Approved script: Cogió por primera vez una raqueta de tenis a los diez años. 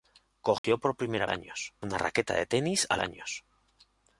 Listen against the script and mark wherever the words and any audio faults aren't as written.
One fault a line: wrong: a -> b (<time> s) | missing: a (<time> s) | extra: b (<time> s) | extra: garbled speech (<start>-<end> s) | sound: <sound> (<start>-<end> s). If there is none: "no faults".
sound: dropout (0.6-0.6 s)
wrong: vez -> años (1.3 s)
missing: los diez (3.0 s)